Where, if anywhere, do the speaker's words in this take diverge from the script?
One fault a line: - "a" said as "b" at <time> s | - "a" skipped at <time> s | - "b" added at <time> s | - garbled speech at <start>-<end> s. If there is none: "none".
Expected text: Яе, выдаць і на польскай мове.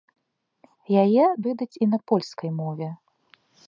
none